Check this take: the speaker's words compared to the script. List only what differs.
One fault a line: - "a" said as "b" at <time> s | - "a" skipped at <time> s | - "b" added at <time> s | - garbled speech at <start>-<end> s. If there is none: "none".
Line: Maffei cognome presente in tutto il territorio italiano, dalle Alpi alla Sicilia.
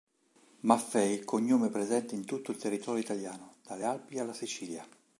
none